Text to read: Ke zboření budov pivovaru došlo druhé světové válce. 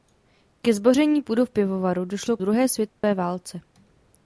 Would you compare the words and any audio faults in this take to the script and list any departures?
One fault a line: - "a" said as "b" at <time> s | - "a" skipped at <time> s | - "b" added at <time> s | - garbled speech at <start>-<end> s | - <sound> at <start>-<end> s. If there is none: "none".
- dropout at 2.9-3.0 s